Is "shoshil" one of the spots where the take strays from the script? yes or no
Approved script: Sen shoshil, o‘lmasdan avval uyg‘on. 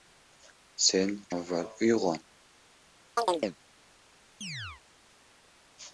yes